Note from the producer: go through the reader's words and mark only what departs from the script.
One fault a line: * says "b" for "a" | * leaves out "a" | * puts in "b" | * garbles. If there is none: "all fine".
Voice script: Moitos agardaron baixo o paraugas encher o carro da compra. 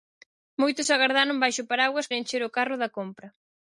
all fine